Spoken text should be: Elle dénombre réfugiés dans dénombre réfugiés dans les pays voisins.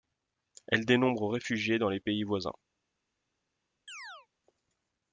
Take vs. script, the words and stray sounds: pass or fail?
fail